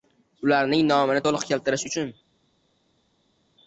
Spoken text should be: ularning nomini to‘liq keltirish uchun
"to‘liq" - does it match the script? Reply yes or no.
yes